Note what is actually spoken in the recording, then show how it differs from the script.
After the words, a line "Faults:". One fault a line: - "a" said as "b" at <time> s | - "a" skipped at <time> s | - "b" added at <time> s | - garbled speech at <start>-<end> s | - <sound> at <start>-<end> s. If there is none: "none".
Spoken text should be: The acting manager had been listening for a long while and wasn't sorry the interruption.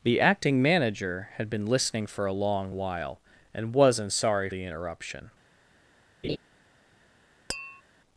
The acting manager had been listening for a long while and wasn't sorry the interruption.
Faults:
- laugh at 6.2-6.4 s
- tap at 7.5-7.8 s